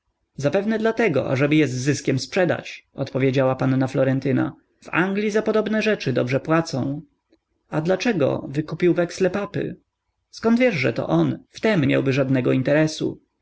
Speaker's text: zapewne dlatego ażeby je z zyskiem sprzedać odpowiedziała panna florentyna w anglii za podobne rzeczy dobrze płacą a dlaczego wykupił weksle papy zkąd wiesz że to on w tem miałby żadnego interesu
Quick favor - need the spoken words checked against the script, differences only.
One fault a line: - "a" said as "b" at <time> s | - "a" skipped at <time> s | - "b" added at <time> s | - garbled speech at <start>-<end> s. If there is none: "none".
none